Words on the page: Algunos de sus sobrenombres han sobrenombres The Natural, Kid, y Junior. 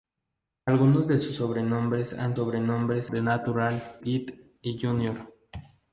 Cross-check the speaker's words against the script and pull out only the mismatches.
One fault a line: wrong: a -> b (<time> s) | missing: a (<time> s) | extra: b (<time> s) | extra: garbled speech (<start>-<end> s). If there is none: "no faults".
no faults